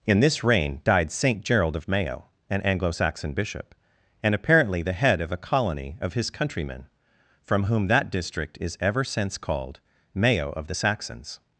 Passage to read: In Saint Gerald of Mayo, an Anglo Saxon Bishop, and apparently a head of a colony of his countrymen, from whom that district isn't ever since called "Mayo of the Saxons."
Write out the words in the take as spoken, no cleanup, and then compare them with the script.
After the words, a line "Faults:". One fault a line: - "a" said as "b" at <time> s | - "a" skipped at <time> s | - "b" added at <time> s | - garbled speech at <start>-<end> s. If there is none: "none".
In this reign died Saint Gerald of Mayo, an Anglo Saxon Bishop, and apparently the head of a colony of his countrymen, from whom that district is ever since called "Mayo of the Saxons."
Faults:
- "this reign died" added at 0.2 s
- "a" said as "the" at 4.8 s
- "isn't" said as "is" at 8.6 s